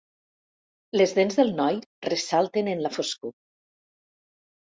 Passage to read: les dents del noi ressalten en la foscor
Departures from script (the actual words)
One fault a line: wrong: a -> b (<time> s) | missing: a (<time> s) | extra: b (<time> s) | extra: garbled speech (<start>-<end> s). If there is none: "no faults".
no faults